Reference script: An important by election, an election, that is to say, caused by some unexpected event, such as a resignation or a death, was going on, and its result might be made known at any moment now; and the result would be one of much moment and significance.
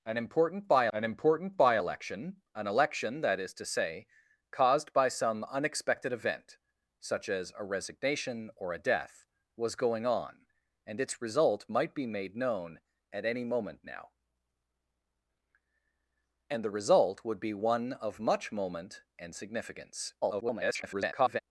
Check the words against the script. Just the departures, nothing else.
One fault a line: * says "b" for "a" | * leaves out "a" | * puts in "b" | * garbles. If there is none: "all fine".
* puts in "an important by"
* garbles